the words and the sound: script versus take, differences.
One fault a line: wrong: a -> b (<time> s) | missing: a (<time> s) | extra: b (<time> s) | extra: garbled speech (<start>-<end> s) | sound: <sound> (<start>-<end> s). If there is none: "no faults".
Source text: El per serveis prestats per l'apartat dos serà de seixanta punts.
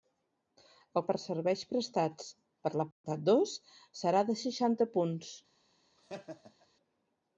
sound: dropout (2.9-3.0 s)
sound: laugh (6.0-6.7 s)